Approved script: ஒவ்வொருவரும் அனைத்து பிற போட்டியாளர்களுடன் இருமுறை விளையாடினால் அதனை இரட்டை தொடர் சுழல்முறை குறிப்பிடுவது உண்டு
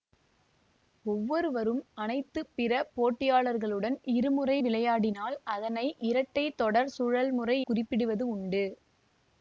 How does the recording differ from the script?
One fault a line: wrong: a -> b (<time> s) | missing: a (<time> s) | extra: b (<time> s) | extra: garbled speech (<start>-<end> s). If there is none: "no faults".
no faults